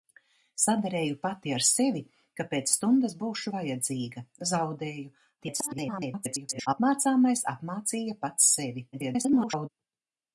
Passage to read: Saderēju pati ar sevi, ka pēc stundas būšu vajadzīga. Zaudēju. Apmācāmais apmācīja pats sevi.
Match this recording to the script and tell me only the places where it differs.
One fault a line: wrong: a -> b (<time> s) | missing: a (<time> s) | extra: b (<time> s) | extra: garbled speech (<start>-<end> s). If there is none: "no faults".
extra: garbled speech (5.4-6.7 s)
extra: garbled speech (8.9-9.7 s)